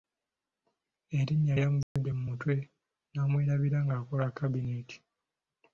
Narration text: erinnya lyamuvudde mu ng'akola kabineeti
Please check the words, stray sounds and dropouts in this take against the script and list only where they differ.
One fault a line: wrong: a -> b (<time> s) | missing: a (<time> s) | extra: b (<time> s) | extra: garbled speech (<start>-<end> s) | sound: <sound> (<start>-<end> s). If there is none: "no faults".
sound: dropout (1.8-2.0 s)
extra: mutwe n'amwerabira (2.3 s)